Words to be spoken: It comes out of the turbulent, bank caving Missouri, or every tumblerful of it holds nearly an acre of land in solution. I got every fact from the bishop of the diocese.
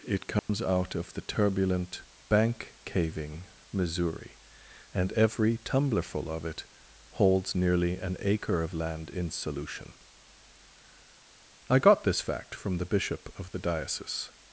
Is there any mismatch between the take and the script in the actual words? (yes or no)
yes